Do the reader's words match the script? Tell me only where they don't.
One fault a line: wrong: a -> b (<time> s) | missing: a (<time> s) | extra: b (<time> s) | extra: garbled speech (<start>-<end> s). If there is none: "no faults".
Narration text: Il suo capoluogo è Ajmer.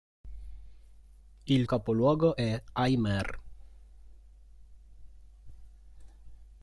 missing: suo (1.7 s)